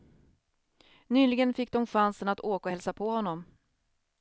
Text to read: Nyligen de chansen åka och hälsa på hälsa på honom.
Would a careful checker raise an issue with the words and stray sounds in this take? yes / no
yes